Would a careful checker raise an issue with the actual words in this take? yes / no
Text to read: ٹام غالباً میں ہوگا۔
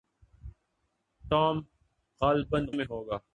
no